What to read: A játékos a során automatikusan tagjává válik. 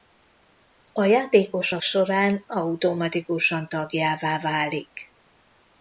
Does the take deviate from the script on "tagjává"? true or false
false